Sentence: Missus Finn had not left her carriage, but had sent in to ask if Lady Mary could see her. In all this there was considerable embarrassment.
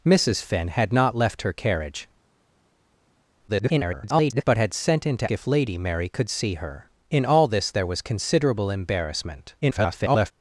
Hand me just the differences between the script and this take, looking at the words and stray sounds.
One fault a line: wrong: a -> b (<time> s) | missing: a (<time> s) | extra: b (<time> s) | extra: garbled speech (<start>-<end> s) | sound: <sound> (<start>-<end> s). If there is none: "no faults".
extra: garbled speech (3.5-4.4 s)
missing: ask (5.3 s)
extra: garbled speech (9.6-10.3 s)